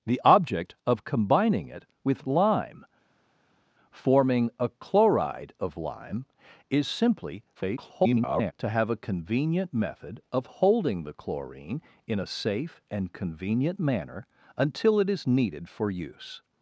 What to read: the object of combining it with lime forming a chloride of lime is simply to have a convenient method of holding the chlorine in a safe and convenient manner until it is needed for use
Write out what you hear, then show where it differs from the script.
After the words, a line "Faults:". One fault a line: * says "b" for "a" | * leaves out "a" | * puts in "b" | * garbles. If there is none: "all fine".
the object of combining it with lime forming a chloride of lime is simply [garbled] to have a convenient method of holding the chlorine in a safe and convenient manner until it is needed for use
Faults:
* garbles